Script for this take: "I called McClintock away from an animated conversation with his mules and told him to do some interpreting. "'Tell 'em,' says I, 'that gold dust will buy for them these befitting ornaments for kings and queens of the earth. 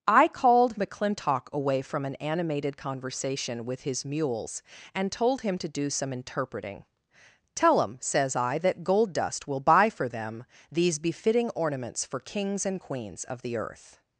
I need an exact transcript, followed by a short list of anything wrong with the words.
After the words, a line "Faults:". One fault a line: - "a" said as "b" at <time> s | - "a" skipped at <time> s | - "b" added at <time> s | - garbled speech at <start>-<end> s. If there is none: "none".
"I called McClintock away from an animated conversation with his mules and told him to do some interpreting. "'Tell 'em,' says I, 'that gold dust will buy for them these befitting ornaments for kings and queens of the earth.
Faults:
none